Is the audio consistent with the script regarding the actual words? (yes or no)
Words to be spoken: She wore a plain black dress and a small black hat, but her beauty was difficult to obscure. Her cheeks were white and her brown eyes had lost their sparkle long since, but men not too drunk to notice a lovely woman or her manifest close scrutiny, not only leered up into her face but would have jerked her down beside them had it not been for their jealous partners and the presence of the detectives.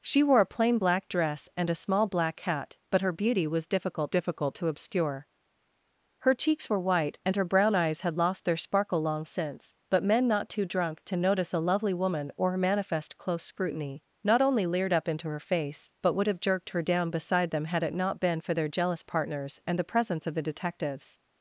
no